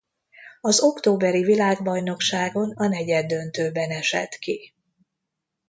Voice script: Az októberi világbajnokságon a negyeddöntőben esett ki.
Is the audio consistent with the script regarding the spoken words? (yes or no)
yes